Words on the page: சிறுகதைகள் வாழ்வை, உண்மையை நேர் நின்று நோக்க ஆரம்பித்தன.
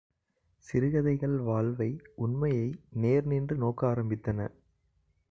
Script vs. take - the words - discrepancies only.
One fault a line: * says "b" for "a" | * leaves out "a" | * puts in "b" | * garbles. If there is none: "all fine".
all fine